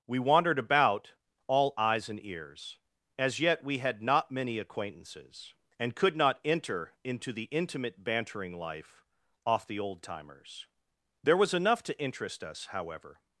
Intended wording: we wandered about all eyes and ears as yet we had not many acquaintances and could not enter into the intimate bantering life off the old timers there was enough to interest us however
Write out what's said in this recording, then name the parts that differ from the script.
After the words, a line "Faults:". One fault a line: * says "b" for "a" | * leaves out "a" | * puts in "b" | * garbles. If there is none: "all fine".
we wandered about all eyes and ears as yet we had not many acquaintances and could not enter into the intimate bantering life off the old timers there was enough to interest us however
Faults:
all fine